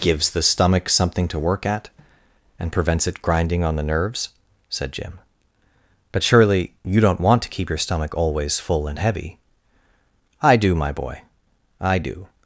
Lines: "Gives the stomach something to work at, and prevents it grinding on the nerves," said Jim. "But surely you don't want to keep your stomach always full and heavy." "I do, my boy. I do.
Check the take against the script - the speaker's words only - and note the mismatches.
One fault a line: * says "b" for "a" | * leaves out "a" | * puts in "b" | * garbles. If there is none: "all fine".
all fine